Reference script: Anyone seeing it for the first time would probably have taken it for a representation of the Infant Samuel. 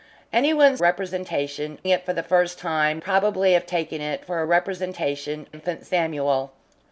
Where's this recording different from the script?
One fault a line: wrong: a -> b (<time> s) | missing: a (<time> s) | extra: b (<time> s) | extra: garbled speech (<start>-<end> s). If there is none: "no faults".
wrong: seeing -> representation (0.8 s)
missing: would (3.0 s)
missing: of the (5.5 s)